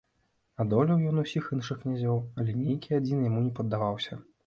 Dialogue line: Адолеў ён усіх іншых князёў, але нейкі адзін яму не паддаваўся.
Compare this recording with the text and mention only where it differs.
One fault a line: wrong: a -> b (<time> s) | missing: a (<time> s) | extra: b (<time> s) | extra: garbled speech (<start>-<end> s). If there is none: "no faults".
no faults